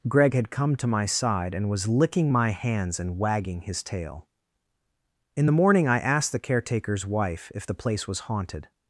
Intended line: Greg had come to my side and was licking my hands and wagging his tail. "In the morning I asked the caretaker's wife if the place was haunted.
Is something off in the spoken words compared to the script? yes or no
no